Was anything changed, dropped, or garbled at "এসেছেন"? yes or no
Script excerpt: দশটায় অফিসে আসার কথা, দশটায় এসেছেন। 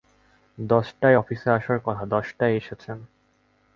no